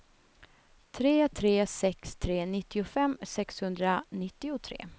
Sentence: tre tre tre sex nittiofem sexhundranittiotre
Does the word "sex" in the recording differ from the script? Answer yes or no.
yes